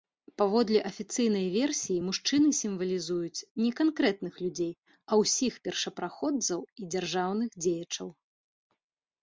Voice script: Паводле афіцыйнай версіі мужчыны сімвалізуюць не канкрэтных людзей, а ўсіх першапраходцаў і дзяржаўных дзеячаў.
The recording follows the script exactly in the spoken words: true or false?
true